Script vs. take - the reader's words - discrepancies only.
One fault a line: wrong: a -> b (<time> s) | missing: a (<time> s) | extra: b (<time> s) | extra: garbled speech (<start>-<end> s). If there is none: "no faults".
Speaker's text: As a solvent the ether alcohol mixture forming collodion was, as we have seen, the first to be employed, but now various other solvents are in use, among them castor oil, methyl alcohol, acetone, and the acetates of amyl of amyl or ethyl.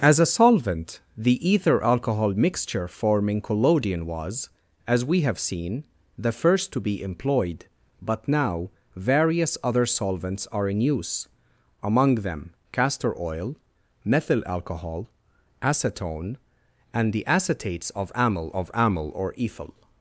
no faults